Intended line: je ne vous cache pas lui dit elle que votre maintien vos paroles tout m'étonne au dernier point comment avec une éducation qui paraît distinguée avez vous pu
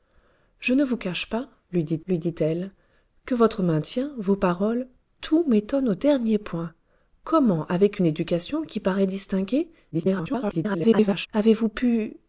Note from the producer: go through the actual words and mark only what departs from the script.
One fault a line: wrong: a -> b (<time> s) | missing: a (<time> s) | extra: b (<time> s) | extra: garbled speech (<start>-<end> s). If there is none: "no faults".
extra: lui dit (2.1 s)
extra: garbled speech (9.9-11.3 s)